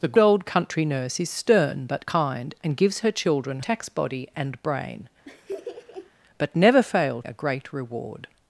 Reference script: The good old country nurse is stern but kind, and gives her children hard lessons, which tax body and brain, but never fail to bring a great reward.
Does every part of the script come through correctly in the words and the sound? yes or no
no